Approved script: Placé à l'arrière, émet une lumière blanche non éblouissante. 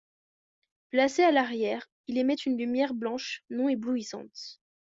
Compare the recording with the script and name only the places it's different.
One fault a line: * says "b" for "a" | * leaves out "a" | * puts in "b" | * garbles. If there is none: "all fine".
* puts in "il"